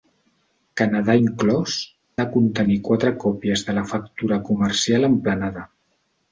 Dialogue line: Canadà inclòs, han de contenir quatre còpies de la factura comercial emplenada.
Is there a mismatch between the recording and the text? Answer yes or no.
yes